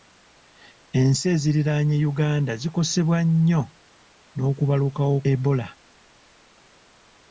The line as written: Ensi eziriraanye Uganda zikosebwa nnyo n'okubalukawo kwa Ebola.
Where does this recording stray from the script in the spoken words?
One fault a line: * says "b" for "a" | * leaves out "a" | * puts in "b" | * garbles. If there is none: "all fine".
* leaves out "kwa"